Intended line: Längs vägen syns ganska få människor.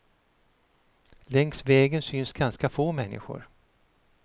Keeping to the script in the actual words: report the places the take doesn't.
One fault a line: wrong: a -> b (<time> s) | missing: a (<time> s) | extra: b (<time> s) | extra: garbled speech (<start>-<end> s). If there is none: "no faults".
no faults